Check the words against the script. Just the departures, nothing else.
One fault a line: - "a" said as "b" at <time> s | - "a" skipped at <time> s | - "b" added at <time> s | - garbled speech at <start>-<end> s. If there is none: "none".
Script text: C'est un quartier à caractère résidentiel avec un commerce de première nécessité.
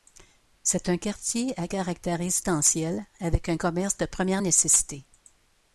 none